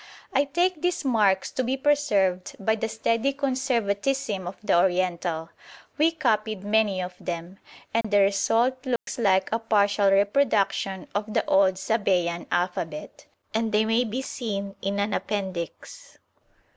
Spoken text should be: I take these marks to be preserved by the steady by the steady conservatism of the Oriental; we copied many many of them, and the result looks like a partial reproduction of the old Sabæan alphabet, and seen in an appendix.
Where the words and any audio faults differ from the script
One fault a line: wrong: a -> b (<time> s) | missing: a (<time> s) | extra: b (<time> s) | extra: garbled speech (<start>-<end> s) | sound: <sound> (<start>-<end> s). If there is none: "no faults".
missing: by the steady (3.3 s)
missing: many (7.0 s)
sound: dropout (8.0-8.0 s)
sound: dropout (9.0-9.1 s)
extra: they may be (13.7 s)